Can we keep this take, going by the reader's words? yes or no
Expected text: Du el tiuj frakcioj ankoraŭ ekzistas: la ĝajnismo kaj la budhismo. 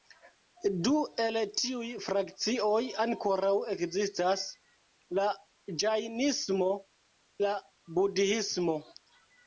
no